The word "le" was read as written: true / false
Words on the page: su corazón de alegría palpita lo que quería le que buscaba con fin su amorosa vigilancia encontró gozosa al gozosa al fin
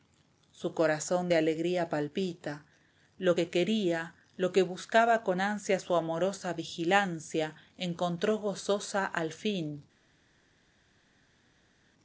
false